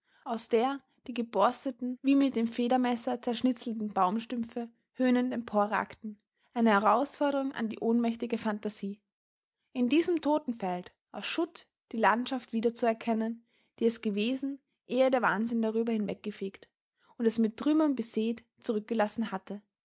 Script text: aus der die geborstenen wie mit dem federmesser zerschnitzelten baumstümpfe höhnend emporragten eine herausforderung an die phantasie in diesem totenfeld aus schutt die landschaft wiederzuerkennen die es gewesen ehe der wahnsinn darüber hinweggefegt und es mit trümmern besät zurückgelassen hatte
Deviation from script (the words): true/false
true